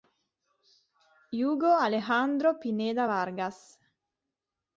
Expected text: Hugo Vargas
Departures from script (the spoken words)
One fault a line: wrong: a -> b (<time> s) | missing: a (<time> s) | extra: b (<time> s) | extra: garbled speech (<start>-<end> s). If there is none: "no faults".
extra: Alejandro Pineda (1.8 s)